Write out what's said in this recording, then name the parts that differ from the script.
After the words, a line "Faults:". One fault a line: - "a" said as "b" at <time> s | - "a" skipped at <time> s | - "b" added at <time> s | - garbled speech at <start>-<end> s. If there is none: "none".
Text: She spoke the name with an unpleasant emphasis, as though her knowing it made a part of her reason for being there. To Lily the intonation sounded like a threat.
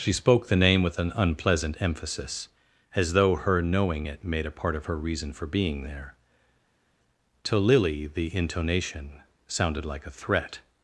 She spoke the name with an unpleasant emphasis, as though her knowing it made a part of her reason for being there. To Lily the intonation sounded like a threat.
Faults:
none